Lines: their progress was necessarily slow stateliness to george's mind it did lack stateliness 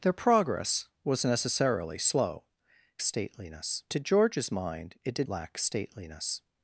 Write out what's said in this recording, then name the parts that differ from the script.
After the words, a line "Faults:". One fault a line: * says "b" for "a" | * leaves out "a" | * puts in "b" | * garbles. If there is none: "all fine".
their progress was necessarily slow stateliness to george's mind it did lack stateliness
Faults:
all fine